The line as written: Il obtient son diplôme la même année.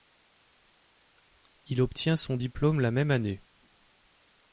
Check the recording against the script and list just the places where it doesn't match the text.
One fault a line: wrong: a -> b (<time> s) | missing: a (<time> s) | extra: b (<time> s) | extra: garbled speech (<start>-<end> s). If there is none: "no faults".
no faults